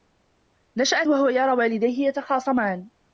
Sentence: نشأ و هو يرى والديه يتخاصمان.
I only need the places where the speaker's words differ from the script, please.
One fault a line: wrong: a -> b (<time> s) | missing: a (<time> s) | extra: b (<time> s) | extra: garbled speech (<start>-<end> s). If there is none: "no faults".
no faults